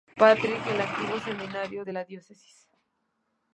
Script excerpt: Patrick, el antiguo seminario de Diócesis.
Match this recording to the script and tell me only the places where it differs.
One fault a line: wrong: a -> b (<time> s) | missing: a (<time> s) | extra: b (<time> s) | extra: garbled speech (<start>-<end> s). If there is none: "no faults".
extra: la (1.9 s)